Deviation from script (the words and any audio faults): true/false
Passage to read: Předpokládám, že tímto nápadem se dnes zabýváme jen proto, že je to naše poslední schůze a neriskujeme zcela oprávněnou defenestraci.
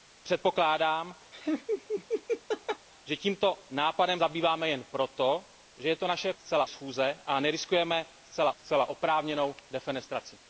true